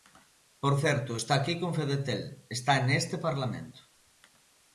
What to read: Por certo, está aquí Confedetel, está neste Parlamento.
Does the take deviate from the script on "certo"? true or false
false